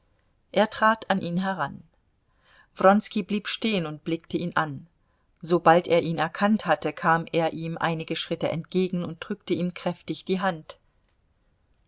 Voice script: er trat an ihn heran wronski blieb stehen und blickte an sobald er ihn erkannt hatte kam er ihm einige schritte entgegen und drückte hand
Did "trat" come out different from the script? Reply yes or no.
no